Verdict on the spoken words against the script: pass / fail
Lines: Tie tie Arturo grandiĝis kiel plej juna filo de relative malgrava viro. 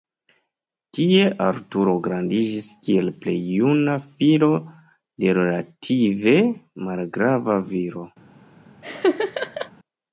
fail